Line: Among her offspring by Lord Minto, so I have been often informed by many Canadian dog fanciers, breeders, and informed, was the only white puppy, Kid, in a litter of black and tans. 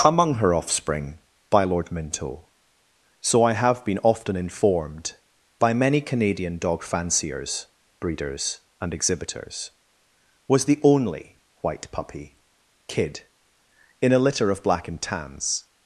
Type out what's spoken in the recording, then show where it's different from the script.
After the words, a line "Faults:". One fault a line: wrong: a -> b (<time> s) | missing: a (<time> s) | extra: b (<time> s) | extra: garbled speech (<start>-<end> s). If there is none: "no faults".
Among her offspring by Lord Minto, so I have been often informed by many Canadian dog fanciers, breeders, and exhibitors, was the only white puppy, Kid, in a litter of black and tans.
Faults:
wrong: informed -> exhibitors (8.9 s)